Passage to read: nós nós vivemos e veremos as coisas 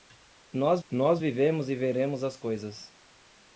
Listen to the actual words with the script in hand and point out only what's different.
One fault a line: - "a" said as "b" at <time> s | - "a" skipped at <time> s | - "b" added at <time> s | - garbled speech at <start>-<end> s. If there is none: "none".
none